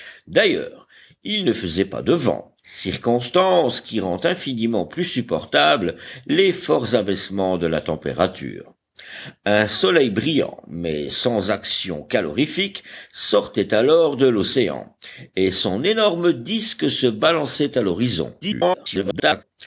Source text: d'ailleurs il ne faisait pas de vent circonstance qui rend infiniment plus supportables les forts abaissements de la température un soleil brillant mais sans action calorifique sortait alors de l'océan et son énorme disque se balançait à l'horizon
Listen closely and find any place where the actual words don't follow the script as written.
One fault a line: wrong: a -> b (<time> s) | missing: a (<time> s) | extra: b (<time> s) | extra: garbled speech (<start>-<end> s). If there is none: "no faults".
extra: garbled speech (18.4-19.4 s)